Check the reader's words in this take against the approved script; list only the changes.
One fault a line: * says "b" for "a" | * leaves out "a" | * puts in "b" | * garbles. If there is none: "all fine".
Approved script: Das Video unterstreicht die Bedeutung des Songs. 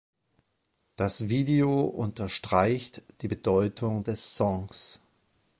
all fine